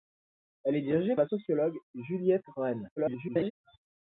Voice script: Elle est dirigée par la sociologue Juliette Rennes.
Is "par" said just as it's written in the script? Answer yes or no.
no